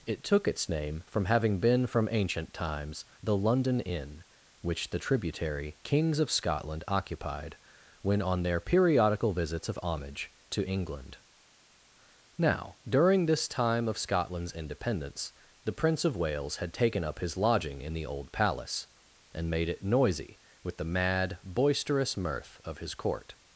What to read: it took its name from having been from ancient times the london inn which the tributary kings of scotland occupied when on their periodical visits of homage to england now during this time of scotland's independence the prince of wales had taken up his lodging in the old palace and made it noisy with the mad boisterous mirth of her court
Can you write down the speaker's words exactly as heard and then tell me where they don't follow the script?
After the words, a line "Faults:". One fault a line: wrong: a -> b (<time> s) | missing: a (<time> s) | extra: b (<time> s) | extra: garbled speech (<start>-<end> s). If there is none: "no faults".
it took its name from having been from ancient times the london inn which the tributary kings of scotland occupied when on their periodical visits of homage to england now during this time of scotland's independence the prince of wales had taken up his lodging in the old palace and made it noisy with the mad boisterous mirth of his court
Faults:
wrong: her -> his (22.8 s)